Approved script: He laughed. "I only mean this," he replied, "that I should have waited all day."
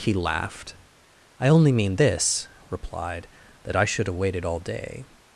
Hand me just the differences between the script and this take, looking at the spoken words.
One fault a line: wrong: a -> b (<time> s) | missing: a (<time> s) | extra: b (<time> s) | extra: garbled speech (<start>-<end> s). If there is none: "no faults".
missing: he (2.5 s)